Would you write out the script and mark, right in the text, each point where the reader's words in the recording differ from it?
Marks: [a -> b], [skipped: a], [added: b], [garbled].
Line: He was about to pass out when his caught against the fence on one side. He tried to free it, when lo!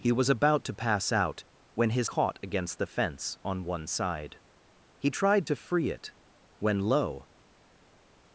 He was about to pass out when his caught against the fence on one side. He tried to free it, when lo!